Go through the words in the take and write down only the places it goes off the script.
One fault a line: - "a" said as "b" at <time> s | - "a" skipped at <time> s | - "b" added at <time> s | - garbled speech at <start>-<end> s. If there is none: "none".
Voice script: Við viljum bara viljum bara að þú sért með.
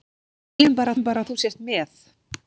none